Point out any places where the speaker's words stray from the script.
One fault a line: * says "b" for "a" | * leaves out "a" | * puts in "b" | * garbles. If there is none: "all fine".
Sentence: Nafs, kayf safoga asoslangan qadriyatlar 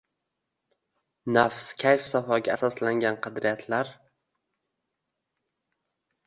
all fine